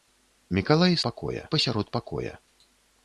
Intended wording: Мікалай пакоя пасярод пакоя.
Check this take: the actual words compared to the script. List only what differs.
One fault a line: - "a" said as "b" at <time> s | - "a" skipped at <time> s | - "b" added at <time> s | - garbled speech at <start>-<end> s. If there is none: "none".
none